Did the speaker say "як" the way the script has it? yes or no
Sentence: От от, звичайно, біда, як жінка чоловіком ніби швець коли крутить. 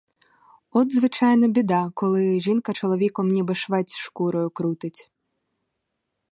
no